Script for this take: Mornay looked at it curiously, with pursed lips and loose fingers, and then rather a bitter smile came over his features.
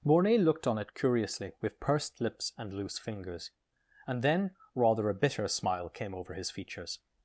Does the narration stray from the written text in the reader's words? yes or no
yes